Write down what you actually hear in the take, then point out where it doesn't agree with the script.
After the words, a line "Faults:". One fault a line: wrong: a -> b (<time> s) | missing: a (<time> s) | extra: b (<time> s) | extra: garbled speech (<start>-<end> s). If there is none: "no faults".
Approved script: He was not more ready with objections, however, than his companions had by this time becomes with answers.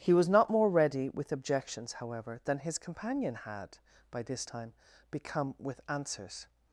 He was not more ready with objections, however, than his companion had by this time become with answers.
Faults:
wrong: companions -> companion (2.8 s)
wrong: becomes -> become (5.1 s)